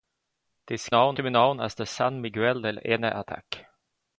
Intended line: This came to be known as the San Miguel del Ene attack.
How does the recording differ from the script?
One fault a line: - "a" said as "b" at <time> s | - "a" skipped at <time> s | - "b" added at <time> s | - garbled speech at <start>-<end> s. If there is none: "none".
- "came" said as "known" at 0.9 s